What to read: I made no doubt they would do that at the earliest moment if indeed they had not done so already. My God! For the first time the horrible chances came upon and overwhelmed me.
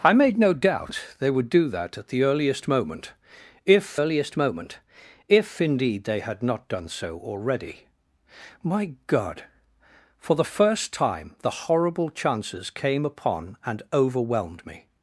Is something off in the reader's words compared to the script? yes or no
yes